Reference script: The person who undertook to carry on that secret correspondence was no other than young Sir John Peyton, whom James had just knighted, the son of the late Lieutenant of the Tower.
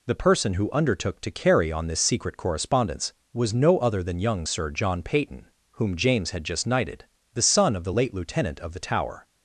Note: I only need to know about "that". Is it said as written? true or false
false